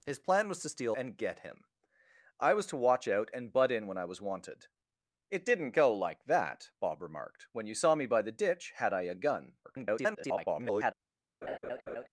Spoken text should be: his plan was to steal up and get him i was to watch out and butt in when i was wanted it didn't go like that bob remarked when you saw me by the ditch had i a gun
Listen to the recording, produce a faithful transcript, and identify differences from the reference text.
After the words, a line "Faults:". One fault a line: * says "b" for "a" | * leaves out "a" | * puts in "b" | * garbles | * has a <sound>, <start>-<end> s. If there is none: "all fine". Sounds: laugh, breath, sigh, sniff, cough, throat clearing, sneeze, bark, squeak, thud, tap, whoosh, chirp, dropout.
his plan was to steal and get him i was to watch out and butt in when i was wanted it didn't go like that bob remarked when you saw me by the ditch had i a gun [garbled]
Faults:
* leaves out "up"
* garbles
* has a laugh, 11.4-12.1 s